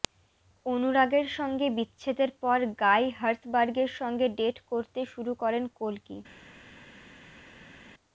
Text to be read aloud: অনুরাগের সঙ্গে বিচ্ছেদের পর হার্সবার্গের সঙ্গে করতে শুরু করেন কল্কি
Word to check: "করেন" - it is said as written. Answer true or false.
true